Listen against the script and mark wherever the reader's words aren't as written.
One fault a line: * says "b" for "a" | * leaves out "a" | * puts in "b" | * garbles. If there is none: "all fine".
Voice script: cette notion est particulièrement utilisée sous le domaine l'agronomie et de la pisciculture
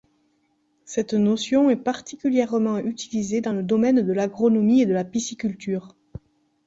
* says "dans" for "sous"
* puts in "de"